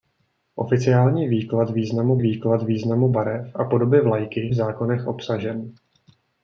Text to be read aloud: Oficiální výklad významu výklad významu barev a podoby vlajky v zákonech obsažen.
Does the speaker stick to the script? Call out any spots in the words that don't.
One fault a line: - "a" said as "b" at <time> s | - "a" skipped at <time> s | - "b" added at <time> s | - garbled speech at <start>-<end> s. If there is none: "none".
none